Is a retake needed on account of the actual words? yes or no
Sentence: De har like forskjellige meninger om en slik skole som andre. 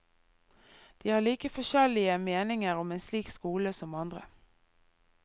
no